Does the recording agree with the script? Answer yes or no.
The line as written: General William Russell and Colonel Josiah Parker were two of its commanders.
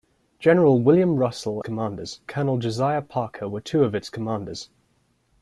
no